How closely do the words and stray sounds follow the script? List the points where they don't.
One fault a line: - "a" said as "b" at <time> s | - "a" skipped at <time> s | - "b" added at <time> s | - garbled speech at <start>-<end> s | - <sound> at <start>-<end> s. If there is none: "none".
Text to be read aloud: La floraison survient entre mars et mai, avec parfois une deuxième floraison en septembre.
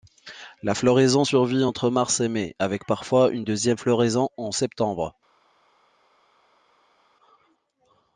none